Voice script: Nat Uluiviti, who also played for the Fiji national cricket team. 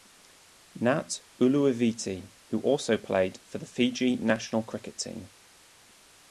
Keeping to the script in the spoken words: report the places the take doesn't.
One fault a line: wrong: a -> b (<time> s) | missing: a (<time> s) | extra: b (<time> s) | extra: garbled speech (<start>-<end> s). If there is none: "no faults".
no faults